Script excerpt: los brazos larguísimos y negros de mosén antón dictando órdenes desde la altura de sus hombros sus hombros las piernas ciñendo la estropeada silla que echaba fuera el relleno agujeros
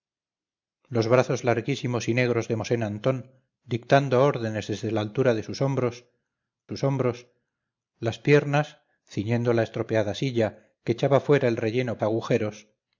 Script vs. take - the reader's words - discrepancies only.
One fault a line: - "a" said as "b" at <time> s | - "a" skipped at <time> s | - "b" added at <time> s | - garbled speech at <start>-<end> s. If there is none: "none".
none